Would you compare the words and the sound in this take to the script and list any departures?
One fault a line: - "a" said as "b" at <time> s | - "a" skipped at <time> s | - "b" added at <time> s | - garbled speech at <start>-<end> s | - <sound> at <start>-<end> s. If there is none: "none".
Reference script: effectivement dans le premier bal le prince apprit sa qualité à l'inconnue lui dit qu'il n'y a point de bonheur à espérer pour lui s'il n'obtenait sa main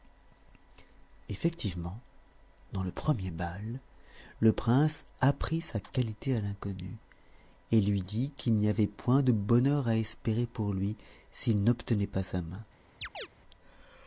- "et" added at 7.7 s
- "a" said as "avait" at 8.7 s
- "pas" added at 12.1 s
- chirp at 13.0-13.3 s